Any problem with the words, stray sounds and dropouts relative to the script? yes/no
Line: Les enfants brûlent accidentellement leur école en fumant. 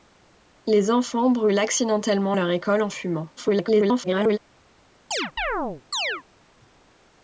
yes